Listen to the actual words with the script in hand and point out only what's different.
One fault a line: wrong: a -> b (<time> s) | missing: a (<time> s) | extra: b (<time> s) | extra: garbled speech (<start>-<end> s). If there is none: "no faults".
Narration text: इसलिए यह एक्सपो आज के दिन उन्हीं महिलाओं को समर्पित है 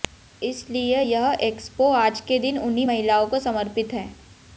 no faults